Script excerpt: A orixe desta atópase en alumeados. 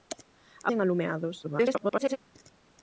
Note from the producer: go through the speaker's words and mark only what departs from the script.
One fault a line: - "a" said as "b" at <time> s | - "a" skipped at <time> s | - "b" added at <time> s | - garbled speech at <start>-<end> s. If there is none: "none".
- "orixe desta atópase" skipped at 0.7 s
- garbled speech at 1.4-2.2 s